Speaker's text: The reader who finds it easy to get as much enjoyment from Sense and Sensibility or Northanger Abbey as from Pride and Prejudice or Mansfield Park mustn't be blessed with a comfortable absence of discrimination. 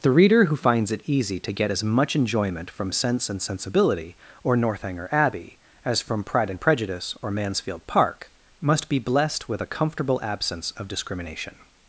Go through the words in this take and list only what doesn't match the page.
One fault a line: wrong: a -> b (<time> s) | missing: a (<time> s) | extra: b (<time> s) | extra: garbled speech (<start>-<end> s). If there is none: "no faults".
wrong: mustn't -> must (8.6 s)